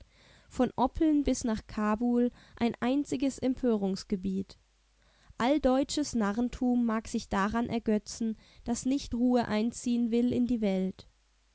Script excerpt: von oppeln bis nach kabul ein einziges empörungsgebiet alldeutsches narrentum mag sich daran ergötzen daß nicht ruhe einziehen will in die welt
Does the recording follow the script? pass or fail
pass